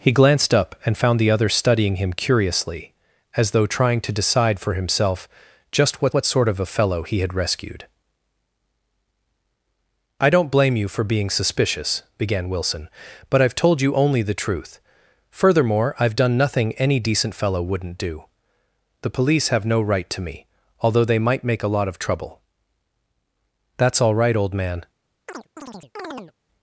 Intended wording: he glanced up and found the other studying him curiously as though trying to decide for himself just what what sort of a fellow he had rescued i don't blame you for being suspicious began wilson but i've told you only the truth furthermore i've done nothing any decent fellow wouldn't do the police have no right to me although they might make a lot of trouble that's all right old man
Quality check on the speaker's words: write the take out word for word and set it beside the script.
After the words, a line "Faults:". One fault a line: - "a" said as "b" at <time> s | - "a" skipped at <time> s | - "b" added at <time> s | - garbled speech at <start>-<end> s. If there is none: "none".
he glanced up and found the other studying him curiously as though trying to decide for himself just what what sort of a fellow he had rescued i don't blame you for being suspicious began wilson but i've told you only the truth furthermore i've done nothing any decent fellow wouldn't do the police have no right to me although they might make a lot of trouble that's all right old man
Faults:
none